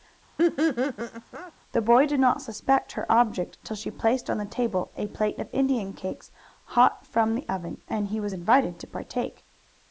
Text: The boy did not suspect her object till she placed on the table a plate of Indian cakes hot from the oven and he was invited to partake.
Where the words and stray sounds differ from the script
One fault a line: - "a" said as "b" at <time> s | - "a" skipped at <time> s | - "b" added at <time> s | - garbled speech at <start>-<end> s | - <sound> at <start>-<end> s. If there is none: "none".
- laugh at 0.4-1.5 s